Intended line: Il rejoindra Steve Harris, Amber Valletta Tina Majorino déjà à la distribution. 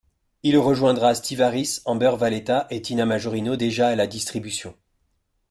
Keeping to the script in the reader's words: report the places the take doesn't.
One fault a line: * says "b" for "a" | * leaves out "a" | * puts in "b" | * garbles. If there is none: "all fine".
* puts in "et"